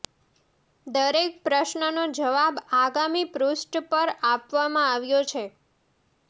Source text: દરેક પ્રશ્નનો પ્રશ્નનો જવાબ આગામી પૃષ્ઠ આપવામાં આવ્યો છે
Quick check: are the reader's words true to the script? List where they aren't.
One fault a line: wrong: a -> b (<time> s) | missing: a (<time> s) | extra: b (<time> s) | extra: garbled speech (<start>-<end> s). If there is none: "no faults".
missing: પ્રશ્નનો (1.9 s)
extra: પર (3.9 s)